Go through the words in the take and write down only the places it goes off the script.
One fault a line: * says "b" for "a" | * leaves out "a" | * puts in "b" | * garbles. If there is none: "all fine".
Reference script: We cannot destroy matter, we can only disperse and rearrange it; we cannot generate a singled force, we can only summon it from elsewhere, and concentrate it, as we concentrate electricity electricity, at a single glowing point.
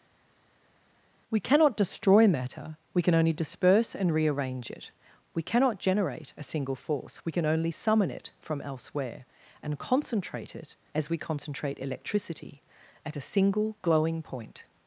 * says "single" for "singled"
* leaves out "electricity"